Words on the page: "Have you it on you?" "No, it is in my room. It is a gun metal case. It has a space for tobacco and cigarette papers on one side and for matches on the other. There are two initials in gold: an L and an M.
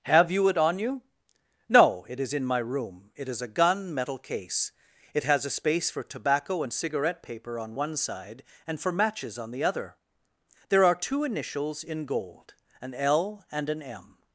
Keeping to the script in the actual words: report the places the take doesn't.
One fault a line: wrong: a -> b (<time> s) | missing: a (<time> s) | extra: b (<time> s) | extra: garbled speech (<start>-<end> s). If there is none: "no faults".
wrong: papers -> paper (7.2 s)